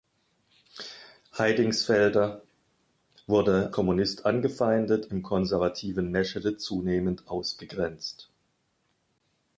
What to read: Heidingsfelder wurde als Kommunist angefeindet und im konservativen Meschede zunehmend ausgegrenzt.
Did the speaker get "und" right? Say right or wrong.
wrong